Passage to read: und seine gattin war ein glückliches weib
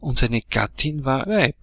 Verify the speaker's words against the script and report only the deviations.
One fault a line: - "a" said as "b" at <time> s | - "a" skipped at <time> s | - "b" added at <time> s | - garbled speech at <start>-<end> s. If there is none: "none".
- "ein glückliches" skipped at 1.2 s